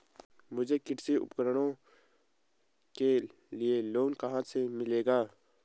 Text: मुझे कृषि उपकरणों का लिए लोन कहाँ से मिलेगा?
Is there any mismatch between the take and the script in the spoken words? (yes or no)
yes